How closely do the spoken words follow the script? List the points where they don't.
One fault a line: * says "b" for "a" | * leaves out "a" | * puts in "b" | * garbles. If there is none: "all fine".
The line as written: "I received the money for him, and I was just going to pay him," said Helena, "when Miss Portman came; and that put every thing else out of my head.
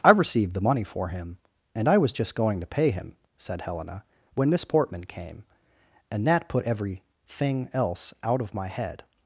all fine